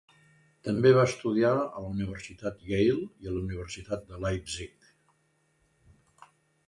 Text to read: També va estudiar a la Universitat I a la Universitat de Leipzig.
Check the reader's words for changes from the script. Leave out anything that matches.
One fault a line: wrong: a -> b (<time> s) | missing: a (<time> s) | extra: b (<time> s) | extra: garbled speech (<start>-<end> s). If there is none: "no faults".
extra: Yale (2.7 s)